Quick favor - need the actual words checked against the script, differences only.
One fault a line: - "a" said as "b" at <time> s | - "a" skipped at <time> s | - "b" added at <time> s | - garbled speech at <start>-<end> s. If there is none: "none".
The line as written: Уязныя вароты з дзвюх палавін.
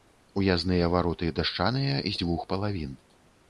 - "дашчаныя" added at 1.4 s